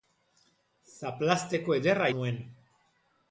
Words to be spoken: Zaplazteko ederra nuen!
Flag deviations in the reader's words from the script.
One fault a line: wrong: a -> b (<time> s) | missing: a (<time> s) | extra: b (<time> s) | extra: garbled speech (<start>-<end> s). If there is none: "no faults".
no faults